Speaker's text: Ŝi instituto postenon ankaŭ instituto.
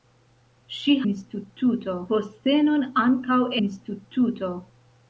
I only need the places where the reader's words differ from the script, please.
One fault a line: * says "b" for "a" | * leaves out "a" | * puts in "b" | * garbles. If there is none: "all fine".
all fine